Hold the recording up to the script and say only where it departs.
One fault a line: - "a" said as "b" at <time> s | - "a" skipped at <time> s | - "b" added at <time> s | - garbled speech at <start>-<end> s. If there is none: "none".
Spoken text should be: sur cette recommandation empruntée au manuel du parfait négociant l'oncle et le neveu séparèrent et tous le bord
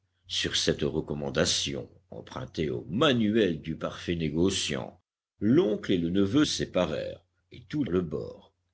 none